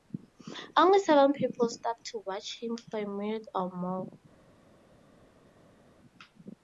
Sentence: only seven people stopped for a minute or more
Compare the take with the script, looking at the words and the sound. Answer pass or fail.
fail